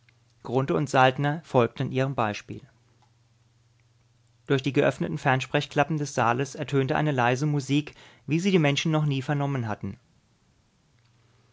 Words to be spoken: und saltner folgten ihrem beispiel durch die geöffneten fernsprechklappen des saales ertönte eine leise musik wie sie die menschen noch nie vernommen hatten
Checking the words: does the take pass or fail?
pass